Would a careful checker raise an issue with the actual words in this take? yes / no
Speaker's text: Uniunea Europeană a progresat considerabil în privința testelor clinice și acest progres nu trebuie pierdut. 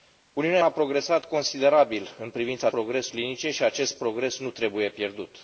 yes